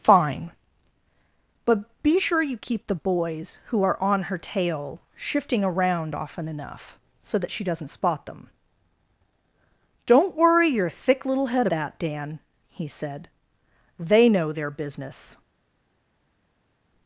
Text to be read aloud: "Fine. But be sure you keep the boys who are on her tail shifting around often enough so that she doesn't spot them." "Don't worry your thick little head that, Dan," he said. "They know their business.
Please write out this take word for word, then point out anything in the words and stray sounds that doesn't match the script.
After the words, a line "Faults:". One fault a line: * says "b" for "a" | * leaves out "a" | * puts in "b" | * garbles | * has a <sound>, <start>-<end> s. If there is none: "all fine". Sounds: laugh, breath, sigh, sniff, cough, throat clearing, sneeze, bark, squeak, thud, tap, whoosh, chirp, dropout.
"Fine. But be sure you keep the boys who are on her tail shifting around often enough so that she doesn't spot them." "Don't worry your thick little head that, Dan," he said. "They know their business.
Faults:
all fine